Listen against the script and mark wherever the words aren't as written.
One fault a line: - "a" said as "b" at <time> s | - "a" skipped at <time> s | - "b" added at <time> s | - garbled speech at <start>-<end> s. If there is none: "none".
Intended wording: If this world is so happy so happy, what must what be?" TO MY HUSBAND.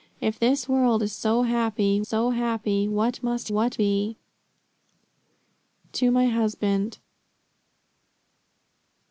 none